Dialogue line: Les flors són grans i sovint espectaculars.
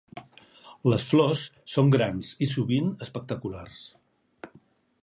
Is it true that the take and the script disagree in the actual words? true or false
false